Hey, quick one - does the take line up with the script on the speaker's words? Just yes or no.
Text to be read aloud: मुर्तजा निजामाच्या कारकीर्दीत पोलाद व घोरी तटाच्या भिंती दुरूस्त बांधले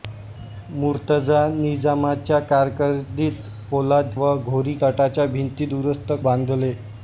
yes